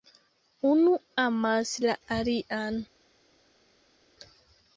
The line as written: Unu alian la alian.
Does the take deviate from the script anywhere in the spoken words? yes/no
yes